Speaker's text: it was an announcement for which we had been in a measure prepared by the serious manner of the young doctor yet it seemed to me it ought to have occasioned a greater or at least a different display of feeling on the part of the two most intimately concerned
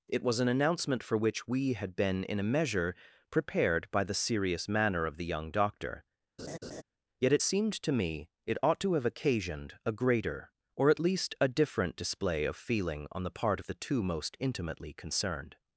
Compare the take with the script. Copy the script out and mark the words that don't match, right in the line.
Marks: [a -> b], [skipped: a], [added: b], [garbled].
it was an announcement for which we had been in a measure prepared by the serious manner of the young doctor yet it seemed to me it ought to have occasioned a greater or at least a different display of feeling on the part of the two most intimately concerned